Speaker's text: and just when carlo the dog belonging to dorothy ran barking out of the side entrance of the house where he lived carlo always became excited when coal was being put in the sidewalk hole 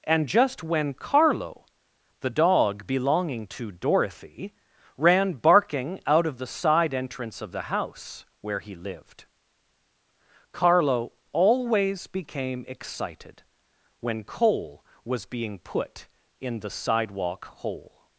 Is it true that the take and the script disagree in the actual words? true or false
false